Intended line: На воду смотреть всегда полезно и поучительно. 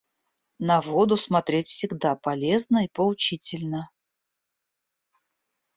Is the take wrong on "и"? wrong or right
right